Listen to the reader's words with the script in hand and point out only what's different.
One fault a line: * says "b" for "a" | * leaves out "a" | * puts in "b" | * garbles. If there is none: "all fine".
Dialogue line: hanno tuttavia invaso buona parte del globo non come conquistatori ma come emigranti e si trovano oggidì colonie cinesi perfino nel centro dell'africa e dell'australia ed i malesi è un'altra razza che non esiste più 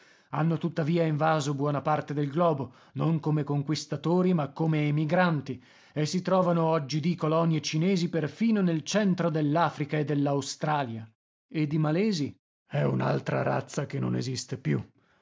all fine